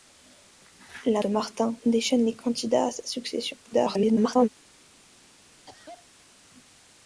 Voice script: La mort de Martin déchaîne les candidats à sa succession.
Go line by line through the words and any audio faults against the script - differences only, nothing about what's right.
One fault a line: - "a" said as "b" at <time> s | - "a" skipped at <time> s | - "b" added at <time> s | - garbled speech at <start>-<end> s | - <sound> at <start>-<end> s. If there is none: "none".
- "mort" skipped at 1.2 s
- garbled speech at 3.6-4.5 s
- cough at 5.7-6.1 s